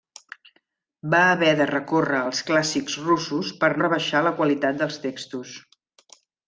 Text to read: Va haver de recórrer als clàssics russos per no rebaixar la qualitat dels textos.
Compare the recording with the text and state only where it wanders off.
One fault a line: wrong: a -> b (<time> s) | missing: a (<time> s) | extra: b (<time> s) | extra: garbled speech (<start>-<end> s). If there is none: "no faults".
missing: no (3.7 s)